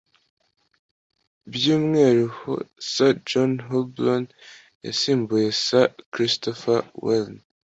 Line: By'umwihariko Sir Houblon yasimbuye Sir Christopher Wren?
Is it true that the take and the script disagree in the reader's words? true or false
true